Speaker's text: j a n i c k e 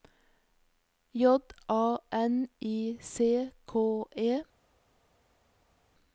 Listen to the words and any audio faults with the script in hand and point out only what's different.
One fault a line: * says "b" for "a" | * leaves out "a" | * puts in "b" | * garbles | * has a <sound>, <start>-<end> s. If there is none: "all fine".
all fine